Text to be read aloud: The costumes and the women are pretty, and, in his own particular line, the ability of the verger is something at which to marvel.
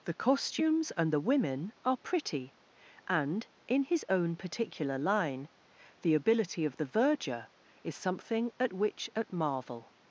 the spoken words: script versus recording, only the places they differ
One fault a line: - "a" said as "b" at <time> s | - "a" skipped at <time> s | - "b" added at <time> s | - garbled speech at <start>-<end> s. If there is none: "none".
- "to" said as "at" at 9.2 s